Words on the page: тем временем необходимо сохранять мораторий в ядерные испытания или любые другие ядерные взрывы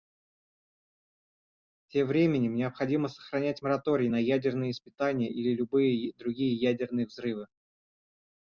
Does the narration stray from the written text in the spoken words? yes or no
yes